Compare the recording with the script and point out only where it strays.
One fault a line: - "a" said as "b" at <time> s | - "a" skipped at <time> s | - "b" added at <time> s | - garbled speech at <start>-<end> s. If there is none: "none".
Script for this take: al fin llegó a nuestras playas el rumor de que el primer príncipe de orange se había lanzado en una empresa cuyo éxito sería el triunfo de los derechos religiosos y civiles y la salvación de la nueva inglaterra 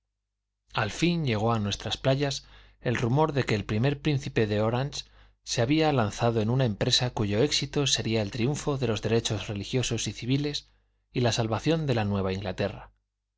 none